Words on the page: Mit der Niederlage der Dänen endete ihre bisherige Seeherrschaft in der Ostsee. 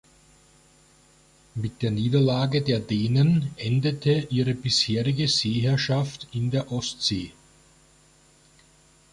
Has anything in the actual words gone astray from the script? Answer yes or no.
no